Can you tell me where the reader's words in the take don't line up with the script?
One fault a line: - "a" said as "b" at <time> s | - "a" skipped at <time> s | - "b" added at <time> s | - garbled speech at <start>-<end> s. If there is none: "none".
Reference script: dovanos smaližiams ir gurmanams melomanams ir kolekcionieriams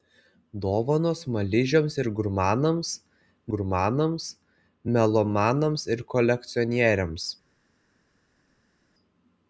- "gurmanams" added at 3.5 s